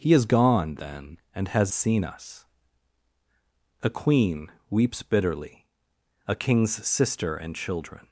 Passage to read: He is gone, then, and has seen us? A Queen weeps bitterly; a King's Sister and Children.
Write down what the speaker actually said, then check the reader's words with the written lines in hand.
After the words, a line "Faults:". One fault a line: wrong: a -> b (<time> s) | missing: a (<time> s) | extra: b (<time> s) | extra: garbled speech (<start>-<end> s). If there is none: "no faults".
He is gone, then, and has seen us? A Queen weeps bitterly; a King's Sister and Children.
Faults:
no faults